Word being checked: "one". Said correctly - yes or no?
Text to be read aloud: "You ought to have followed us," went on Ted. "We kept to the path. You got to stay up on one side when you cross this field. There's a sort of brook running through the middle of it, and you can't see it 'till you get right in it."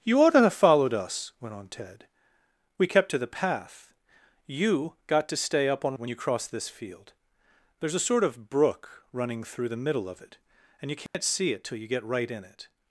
no